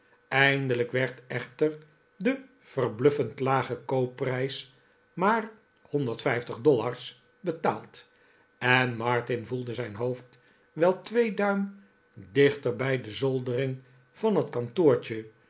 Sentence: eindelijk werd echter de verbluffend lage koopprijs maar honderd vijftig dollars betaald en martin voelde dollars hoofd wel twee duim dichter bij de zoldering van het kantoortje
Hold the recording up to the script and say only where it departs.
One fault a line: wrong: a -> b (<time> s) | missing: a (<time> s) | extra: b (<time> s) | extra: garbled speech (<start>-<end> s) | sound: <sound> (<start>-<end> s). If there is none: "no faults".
wrong: dollars -> zijn (9.7 s)